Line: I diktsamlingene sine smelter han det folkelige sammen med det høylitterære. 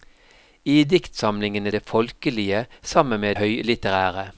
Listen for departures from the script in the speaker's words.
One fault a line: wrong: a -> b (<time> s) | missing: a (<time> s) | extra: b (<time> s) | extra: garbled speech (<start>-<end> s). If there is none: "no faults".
missing: sine smelter han (1.7 s)
missing: det (3.4 s)